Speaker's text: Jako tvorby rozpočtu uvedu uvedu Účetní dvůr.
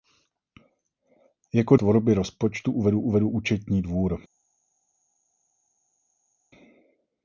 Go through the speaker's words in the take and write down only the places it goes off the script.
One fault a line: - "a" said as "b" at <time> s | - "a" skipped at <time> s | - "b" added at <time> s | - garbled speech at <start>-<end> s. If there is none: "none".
none